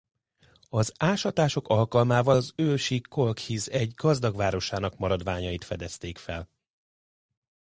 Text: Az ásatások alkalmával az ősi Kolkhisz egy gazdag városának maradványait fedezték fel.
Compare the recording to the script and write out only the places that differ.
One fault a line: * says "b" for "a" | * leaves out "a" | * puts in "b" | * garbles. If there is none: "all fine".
all fine